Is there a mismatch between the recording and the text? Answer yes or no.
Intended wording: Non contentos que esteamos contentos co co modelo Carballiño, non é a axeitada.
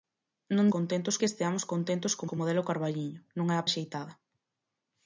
no